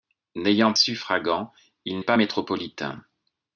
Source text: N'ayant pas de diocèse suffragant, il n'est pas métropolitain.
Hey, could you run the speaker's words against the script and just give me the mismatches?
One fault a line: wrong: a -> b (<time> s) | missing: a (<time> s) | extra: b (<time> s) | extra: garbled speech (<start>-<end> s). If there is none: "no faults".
missing: pas de diocèse (0.7 s)
missing: n'est (2.0 s)